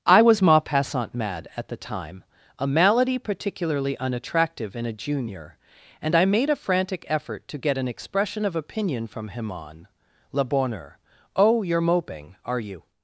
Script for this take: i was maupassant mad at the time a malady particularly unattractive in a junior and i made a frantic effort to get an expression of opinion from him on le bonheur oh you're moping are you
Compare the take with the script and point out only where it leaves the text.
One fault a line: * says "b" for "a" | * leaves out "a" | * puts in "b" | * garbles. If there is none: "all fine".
all fine